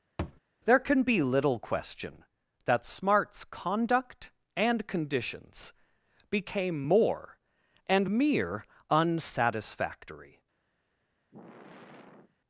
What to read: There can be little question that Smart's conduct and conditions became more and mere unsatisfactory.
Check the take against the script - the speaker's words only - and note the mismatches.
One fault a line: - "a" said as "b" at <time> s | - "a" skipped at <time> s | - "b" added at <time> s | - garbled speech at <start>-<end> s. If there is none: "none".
none